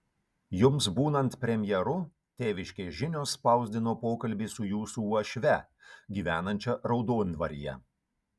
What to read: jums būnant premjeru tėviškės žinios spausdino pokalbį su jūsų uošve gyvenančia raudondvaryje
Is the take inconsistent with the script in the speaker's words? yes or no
no